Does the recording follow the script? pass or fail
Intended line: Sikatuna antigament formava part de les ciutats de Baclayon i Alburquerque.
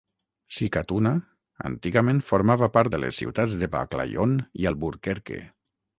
pass